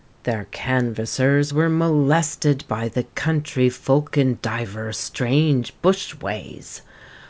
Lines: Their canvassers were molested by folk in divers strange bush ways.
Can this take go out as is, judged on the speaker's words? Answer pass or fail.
fail